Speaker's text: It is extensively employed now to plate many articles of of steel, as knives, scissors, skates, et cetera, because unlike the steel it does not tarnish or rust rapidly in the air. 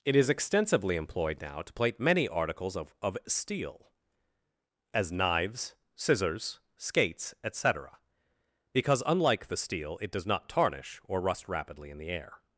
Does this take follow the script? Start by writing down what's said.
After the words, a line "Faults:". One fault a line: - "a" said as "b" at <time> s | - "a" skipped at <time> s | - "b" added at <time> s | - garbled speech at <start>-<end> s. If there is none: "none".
It is extensively employed now to plate many articles of of steel, as knives, scissors, skates, et cetera, because unlike the steel it does not tarnish or rust rapidly in the air.
Faults:
none